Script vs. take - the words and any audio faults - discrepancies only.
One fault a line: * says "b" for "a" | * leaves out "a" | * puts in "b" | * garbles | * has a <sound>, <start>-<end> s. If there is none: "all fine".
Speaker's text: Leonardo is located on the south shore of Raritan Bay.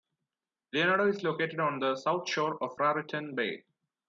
all fine